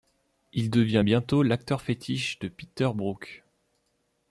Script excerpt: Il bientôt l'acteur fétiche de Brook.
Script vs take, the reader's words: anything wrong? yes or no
yes